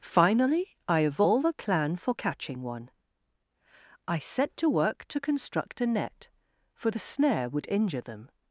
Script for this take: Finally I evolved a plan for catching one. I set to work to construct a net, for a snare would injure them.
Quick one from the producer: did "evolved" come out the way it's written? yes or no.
no